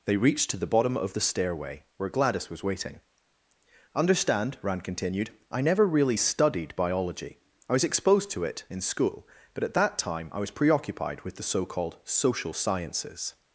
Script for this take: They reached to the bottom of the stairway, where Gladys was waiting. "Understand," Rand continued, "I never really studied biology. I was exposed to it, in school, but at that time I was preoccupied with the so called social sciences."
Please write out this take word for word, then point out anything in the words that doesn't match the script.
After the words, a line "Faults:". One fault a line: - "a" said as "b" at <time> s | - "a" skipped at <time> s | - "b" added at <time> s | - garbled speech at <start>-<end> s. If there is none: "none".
They reached to the bottom of the stairway, where Gladys was waiting. "Understand," Rand continued, "I never really studied biology. I was exposed to it, in school, but at that time I was preoccupied with the so called social sciences."
Faults:
none